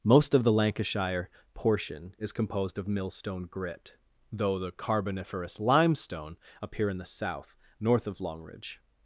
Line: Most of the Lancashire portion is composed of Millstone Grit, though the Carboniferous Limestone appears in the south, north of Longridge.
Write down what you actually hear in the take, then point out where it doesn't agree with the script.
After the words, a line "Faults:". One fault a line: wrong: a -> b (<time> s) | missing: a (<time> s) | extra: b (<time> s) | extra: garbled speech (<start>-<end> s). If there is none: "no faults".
Most of the Lancashire portion is composed of Millstone Grit, though the Carboniferous Limestone appear in the south, north of Longridge.
Faults:
wrong: appears -> appear (6.6 s)